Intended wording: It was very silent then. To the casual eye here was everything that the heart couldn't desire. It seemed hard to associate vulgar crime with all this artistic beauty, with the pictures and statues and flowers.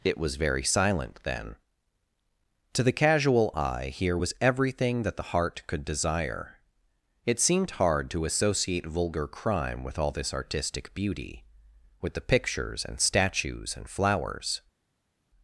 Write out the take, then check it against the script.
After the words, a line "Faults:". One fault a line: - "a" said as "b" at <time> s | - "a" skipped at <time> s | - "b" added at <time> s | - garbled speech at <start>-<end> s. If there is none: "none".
It was very silent then. To the casual eye here was everything that the heart could desire. It seemed hard to associate vulgar crime with all this artistic beauty, with the pictures and statues and flowers.
Faults:
- "couldn't" said as "could" at 5.7 s